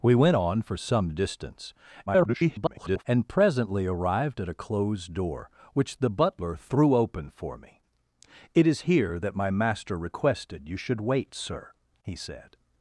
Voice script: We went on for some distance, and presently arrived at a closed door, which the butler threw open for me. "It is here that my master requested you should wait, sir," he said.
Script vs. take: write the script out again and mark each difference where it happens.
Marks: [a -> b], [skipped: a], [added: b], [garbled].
We went on for some distance, [garbled] and presently arrived at a closed door, which the butler threw open for me. "It is here that my master requested you should wait, sir," he said.